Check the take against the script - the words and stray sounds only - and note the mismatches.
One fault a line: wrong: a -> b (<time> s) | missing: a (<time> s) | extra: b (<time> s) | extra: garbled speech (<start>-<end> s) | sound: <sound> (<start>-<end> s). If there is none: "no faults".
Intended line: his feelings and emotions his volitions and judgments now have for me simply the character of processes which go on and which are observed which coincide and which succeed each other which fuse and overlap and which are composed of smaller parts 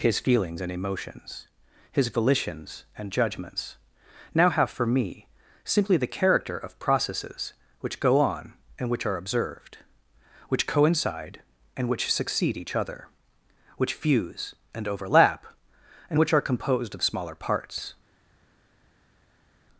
no faults